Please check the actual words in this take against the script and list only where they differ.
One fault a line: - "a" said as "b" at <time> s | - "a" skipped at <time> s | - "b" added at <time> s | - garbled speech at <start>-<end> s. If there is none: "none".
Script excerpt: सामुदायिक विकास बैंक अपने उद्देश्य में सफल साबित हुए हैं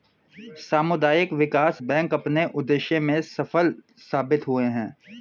none